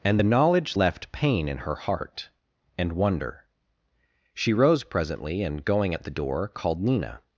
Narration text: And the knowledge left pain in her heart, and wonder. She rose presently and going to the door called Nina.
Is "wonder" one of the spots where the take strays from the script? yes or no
no